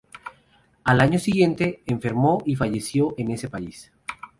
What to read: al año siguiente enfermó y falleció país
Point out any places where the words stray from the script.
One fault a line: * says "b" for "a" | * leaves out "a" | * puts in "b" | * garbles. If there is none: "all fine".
* puts in "en ese"